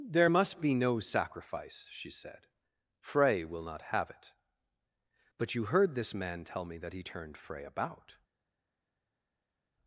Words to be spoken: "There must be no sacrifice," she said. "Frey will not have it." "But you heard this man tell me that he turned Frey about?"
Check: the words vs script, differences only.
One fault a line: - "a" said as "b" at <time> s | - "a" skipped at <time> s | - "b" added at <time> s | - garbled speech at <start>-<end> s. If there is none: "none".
none